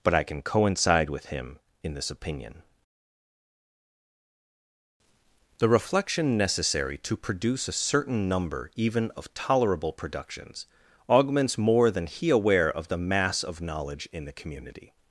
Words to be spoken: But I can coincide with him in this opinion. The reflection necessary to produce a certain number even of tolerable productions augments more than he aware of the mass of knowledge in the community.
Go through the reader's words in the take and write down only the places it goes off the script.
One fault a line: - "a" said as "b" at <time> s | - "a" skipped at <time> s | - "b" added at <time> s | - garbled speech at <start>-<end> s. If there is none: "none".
none